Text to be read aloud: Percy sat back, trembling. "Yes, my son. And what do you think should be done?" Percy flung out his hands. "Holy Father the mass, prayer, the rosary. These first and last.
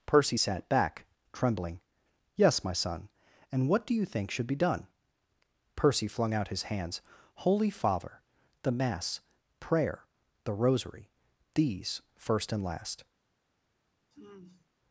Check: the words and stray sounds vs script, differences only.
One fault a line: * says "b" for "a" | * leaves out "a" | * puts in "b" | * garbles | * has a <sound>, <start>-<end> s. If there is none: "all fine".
* has a sigh, 14.1-14.7 s